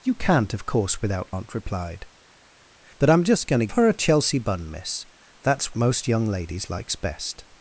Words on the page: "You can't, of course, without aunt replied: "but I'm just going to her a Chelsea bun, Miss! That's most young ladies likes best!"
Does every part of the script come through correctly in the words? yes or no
yes